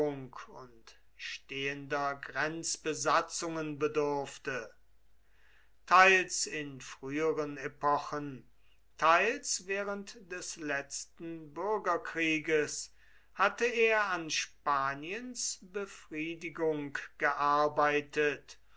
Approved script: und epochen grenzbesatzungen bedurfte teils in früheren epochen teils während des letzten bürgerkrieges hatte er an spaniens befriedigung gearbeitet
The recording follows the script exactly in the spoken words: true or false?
false